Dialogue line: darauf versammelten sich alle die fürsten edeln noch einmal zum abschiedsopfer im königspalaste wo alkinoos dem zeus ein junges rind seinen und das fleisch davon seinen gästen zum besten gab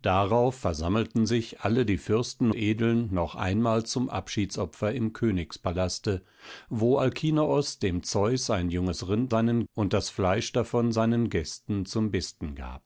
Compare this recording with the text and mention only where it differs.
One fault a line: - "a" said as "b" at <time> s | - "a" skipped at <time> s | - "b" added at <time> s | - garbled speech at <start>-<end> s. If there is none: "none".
none